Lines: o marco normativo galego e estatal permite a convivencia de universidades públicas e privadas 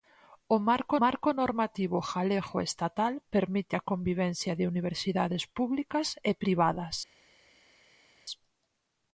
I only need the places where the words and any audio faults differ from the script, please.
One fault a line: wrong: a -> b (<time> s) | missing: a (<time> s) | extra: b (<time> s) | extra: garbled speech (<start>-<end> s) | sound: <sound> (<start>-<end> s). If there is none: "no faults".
extra: marco (1.0 s)